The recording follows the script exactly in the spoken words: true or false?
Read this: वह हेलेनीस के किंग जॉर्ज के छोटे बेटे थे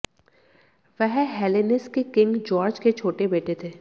true